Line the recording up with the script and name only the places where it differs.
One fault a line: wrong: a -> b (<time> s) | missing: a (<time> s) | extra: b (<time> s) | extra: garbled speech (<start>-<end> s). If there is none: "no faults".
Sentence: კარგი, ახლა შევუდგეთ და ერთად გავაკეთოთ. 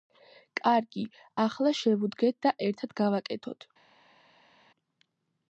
no faults